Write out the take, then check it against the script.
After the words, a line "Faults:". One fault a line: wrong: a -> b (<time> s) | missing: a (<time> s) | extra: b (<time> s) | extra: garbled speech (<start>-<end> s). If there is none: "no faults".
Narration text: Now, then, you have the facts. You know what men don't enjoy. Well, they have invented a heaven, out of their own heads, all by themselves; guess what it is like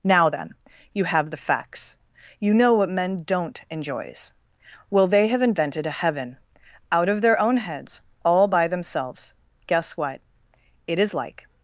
Now, then, you have the facts. You know what men don't enjoys. Well, they have invented a heaven, out of their own heads, all by themselves; guess what it is like
Faults:
wrong: enjoy -> enjoys (3.7 s)